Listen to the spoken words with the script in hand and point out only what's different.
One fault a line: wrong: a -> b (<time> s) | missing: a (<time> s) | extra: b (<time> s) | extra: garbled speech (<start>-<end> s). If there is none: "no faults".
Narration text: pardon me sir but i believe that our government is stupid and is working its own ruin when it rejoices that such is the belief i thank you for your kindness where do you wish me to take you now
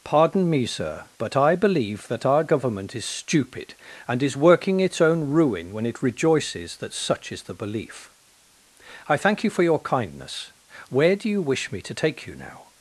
no faults